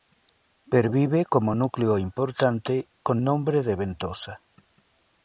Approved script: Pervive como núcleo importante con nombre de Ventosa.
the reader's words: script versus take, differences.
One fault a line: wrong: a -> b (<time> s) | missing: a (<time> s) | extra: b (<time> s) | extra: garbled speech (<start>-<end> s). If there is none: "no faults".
no faults